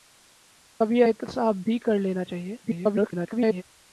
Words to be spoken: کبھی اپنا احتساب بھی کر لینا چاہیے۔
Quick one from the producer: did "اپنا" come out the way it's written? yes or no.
no